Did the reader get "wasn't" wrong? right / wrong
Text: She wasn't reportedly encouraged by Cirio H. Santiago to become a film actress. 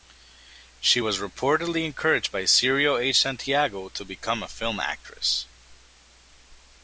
wrong